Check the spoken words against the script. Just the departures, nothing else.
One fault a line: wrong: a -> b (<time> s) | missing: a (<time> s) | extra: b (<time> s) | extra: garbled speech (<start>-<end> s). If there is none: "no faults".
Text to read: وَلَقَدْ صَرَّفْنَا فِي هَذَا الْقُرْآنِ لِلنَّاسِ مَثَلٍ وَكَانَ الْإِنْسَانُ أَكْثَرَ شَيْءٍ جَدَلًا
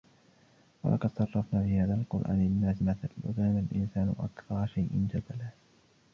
no faults